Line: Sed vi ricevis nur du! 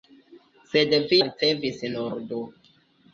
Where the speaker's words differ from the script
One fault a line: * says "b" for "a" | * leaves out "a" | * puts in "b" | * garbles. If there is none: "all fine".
all fine